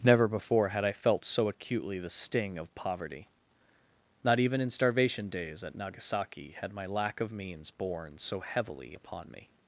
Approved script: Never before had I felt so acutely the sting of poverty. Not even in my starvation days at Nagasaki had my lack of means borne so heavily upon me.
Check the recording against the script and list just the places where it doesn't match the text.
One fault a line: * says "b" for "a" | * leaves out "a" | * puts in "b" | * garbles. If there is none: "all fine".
* leaves out "my"